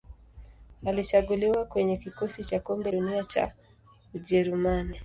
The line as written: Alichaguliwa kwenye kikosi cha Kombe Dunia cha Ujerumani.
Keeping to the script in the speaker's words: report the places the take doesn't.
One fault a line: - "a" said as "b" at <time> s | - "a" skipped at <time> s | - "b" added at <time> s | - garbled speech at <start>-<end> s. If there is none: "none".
none